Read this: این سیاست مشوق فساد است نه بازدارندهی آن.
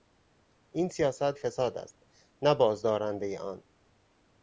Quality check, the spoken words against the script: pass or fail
fail